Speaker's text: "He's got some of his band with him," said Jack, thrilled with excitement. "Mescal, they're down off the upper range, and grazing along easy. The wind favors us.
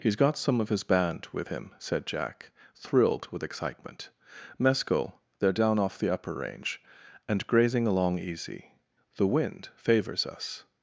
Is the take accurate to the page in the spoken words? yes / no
yes